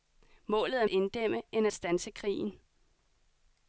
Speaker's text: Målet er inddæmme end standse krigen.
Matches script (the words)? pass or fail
pass